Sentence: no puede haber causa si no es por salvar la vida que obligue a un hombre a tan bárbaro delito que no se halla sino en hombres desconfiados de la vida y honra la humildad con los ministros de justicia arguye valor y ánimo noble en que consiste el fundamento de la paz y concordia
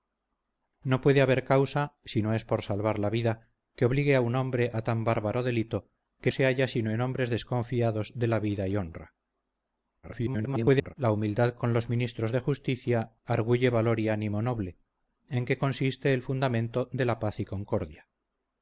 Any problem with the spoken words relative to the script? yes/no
yes